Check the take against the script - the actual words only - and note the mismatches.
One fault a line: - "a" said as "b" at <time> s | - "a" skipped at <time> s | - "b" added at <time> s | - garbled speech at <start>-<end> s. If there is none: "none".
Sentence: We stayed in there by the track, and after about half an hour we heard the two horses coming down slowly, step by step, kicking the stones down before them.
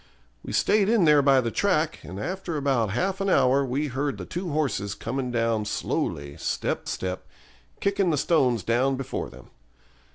- "by" skipped at 6.9 s